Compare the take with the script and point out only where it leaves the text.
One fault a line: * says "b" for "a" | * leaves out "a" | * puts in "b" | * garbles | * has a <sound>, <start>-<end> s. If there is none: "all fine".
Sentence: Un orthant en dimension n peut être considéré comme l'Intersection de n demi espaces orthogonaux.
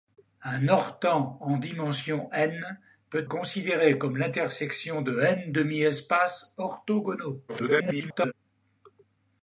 * leaves out "être"
* garbles